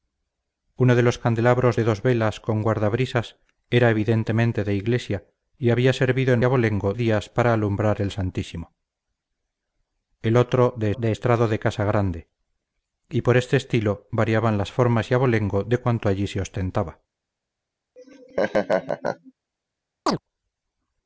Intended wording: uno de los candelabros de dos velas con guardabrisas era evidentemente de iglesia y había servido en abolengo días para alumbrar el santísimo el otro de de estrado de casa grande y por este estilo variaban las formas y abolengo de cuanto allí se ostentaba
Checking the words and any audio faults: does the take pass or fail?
fail